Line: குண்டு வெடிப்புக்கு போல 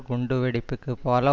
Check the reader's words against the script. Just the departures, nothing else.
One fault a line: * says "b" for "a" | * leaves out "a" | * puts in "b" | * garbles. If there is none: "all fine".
all fine